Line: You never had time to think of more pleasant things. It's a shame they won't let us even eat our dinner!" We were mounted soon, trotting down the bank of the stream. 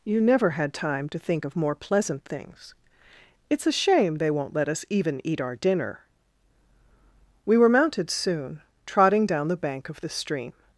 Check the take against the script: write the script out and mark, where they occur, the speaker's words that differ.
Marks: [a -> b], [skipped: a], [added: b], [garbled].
You never had time to think of more pleasant things. It's a shame they won't let us even eat our dinner!" We were mounted soon, trotting down the bank of the stream.